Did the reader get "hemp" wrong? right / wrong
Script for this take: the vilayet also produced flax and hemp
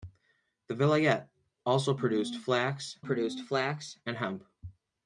right